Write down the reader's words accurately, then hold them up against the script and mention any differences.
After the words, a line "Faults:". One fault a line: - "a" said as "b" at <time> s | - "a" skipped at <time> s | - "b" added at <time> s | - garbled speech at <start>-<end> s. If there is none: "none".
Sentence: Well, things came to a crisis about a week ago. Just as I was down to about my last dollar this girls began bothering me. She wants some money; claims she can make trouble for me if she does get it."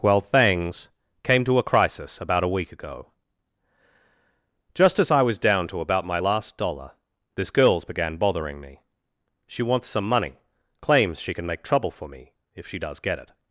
Well, things came to a crisis about a week ago. Just as I was down to about my last dollar this girls began bothering me. She wants some money; claims she can make trouble for me if she does get it."
Faults:
none